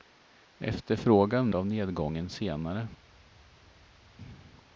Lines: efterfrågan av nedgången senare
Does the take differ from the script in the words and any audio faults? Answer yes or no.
no